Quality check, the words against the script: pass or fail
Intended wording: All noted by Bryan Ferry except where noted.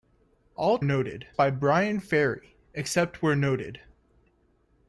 pass